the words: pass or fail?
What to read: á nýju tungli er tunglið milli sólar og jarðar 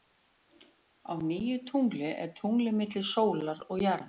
pass